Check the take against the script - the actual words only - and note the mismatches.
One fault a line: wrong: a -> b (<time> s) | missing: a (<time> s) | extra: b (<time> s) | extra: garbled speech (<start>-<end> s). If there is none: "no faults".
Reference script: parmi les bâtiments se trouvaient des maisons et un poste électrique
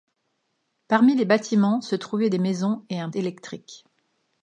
missing: poste (3.1 s)